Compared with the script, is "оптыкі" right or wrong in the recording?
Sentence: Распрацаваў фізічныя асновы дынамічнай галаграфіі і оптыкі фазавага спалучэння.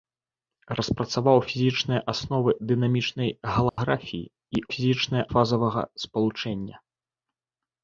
wrong